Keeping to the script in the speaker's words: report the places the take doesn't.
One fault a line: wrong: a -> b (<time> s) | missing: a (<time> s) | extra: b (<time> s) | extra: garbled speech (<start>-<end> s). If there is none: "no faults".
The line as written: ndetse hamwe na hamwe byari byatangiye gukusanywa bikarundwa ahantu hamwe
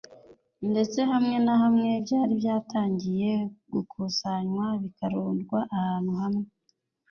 no faults